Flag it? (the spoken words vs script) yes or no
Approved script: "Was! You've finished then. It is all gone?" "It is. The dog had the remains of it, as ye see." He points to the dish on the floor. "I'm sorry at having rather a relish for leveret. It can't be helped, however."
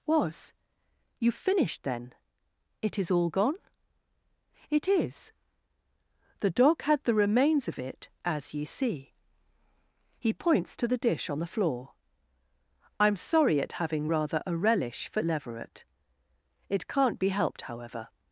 no